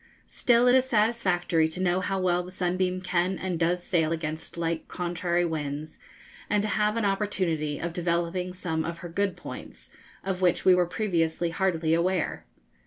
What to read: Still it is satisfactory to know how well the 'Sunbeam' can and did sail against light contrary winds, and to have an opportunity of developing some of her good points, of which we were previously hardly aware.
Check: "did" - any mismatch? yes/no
yes